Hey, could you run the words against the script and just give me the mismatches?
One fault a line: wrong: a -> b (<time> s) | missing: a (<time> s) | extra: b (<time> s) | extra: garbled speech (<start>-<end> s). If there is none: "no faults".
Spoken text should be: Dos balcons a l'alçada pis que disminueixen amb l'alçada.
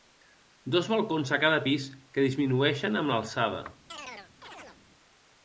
wrong: l'alçada -> cada (1.4 s)